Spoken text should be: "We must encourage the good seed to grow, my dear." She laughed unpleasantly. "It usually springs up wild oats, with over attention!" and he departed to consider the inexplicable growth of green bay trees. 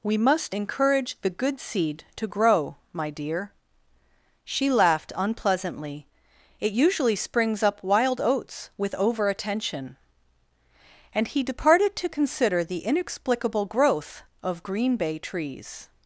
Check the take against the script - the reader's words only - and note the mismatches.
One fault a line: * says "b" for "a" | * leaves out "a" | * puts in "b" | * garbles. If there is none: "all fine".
all fine